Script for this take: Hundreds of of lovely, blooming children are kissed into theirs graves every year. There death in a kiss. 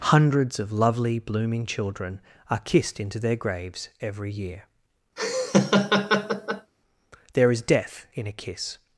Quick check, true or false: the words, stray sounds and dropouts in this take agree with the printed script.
false